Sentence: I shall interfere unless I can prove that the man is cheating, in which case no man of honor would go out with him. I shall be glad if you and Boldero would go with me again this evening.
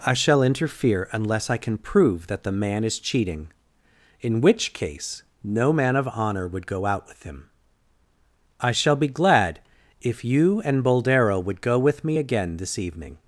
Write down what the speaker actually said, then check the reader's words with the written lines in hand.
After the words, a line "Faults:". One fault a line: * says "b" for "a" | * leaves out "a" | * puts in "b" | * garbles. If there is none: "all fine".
I shall interfere unless I can prove that the man is cheating, in which case no man of honor would go out with him. I shall be glad if you and Boldero would go with me again this evening.
Faults:
all fine